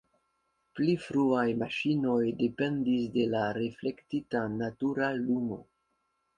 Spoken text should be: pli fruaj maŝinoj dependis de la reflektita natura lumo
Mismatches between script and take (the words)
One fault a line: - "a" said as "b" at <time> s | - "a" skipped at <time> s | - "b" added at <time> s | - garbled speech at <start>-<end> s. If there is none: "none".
none